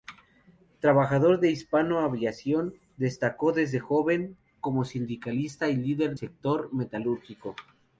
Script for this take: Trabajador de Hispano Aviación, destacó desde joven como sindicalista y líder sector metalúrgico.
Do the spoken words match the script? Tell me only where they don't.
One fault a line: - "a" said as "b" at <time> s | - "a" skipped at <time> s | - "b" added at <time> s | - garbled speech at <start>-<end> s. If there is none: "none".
none